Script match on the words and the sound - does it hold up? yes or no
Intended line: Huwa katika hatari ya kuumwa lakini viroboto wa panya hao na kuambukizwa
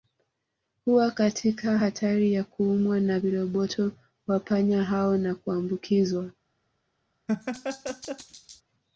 no